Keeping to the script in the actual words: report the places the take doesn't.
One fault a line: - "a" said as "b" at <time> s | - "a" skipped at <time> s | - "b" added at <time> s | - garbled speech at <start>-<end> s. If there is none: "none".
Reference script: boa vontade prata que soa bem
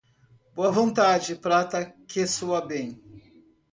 none